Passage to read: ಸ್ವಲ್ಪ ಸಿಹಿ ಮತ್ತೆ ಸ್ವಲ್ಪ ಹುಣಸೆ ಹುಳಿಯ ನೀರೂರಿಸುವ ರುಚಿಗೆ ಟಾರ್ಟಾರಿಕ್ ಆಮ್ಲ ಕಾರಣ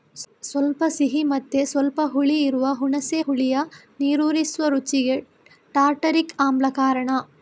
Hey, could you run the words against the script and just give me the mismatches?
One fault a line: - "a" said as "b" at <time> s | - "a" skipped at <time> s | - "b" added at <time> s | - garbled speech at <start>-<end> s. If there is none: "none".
- "ಹುಳಿ ಇರುವ" added at 2.0 s